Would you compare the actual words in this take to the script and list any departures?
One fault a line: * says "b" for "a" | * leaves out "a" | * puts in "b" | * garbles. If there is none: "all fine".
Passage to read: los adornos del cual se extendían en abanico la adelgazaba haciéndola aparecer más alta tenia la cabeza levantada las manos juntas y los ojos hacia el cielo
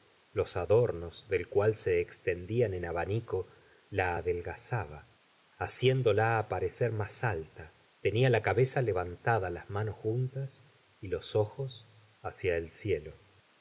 all fine